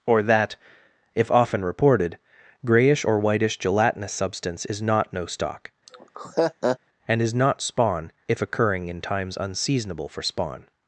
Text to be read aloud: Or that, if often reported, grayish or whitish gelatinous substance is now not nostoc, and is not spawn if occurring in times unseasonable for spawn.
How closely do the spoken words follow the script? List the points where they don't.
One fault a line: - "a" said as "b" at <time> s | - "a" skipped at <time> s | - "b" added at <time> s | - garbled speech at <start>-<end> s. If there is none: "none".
- "now" skipped at 4.8 s